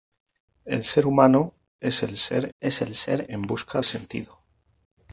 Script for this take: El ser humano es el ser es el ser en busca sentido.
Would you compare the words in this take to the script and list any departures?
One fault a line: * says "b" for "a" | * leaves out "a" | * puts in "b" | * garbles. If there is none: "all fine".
all fine